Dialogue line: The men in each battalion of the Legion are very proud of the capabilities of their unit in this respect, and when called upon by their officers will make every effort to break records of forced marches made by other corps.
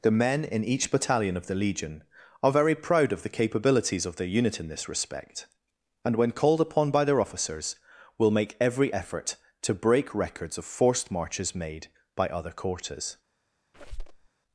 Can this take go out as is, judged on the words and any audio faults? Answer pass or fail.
fail